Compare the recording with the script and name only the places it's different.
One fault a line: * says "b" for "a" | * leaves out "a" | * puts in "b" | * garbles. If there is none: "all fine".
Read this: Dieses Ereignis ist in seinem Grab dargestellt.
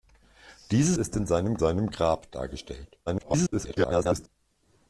* leaves out "Ereignis"
* puts in "seinem"
* garbles